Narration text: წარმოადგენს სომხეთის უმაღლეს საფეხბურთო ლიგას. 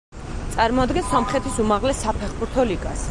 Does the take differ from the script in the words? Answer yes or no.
no